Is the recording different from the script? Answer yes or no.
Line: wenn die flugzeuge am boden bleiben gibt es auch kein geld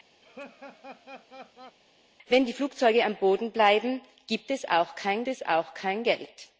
yes